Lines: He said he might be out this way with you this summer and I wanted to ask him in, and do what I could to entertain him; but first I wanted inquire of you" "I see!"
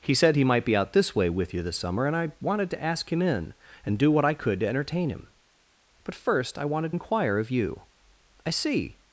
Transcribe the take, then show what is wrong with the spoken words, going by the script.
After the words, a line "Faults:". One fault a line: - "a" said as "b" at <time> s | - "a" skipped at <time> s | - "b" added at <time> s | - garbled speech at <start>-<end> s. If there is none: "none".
He said he might be out this way with you this summer and I wanted to ask him in, and do what I could to entertain him; but first I wanted inquire of you" "I see!"
Faults:
none